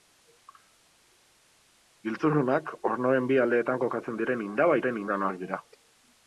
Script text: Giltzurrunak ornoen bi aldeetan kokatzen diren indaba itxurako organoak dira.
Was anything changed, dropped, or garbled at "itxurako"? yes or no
yes